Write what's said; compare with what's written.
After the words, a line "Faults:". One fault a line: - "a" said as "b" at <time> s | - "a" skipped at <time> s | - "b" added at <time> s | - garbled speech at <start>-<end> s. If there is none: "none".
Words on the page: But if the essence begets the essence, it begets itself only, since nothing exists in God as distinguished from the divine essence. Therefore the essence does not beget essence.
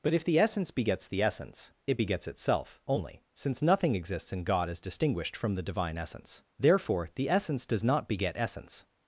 But if the essence begets the essence, it begets itself only, since nothing exists in God as distinguished from the divine essence. Therefore the essence does not beget essence.
Faults:
none